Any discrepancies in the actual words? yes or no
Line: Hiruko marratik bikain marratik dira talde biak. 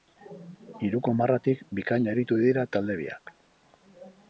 yes